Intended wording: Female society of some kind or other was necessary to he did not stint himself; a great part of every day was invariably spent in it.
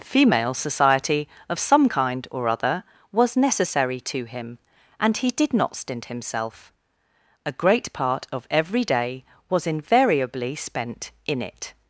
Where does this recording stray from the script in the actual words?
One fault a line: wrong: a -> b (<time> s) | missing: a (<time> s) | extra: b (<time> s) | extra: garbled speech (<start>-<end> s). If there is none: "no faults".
extra: him and (4.3 s)